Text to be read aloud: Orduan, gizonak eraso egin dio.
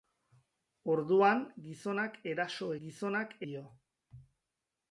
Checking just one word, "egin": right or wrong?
wrong